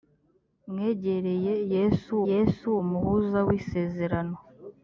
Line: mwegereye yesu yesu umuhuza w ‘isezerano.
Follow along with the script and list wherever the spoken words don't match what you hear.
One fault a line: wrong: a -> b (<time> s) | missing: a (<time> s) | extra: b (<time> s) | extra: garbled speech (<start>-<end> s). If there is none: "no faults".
no faults